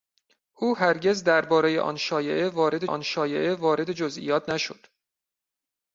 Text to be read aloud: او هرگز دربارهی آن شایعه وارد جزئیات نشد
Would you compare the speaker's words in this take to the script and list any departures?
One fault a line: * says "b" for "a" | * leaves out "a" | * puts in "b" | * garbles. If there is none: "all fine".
* puts in "آن شایعه وارد"